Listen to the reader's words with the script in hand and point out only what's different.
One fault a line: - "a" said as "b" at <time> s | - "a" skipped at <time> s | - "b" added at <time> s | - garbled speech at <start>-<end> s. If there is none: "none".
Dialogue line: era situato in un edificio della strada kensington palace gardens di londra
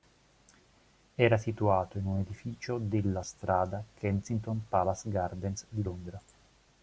none